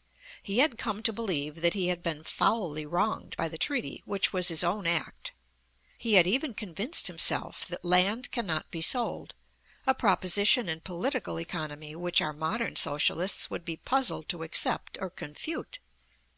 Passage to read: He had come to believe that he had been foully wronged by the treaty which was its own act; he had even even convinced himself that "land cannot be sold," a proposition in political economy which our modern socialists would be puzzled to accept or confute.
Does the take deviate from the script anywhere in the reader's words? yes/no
yes